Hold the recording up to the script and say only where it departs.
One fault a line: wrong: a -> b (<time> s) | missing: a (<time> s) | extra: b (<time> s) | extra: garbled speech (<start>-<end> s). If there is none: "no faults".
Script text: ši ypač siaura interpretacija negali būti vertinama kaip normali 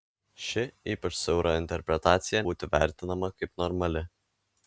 missing: negali (2.4 s)